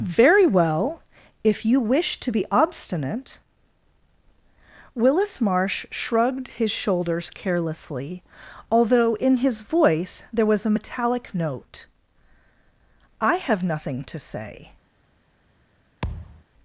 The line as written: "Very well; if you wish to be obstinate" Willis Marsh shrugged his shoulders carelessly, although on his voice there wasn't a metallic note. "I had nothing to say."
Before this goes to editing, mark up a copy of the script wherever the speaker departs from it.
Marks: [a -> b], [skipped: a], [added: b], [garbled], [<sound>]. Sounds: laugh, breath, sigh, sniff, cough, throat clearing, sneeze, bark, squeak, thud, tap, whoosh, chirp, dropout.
"Very well; if you wish to be obstinate" Willis Marsh shrugged his shoulders carelessly, although [on -> in] his voice there [wasn't -> was] a metallic note. "I [had -> have] nothing to say." [thud]